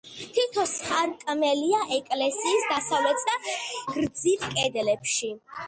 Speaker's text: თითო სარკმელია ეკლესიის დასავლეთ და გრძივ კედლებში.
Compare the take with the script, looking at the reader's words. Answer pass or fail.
pass